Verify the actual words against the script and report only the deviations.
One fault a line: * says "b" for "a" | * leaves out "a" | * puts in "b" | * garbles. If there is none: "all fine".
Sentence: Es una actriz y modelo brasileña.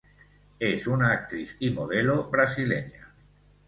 all fine